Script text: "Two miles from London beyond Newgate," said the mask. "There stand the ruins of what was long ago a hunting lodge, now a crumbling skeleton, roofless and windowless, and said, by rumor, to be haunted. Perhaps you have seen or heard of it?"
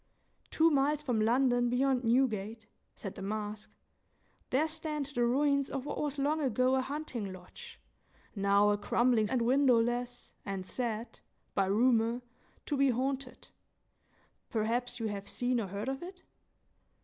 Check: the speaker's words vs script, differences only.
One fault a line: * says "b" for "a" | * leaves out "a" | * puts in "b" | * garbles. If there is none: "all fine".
* leaves out "skeleton roofless"